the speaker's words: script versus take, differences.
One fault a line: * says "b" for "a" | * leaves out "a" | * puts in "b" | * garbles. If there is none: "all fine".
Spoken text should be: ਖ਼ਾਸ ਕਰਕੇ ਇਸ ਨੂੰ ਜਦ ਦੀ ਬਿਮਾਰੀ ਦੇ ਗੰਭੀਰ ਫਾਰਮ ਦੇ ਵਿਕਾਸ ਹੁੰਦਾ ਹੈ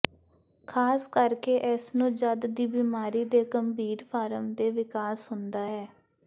all fine